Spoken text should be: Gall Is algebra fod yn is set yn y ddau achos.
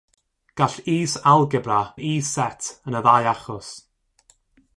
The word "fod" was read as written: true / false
false